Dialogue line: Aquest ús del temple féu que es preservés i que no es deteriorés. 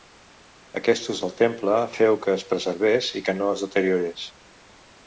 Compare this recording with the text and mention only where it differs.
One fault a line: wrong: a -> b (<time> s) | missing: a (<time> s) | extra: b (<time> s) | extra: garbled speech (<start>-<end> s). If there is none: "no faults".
no faults